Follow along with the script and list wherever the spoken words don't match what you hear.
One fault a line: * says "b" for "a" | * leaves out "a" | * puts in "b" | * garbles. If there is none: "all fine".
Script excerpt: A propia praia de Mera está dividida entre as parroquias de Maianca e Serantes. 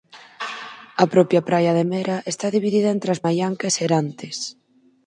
* leaves out "parroquias de"